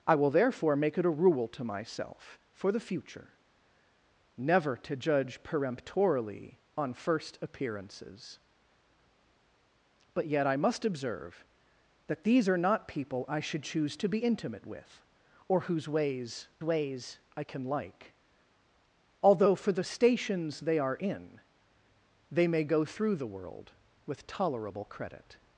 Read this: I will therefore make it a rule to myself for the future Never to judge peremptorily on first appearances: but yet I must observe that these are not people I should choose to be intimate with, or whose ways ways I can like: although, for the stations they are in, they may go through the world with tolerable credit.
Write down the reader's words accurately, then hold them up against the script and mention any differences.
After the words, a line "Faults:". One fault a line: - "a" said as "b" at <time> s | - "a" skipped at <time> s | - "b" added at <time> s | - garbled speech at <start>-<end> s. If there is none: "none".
I will therefore make it a rule to myself for the future Never to judge peremptorily on first appearances: but yet I must observe that these are not people I should choose to be intimate with, or whose ways ways I can like: although, for the stations they are in, they may go through the world with tolerable credit.
Faults:
none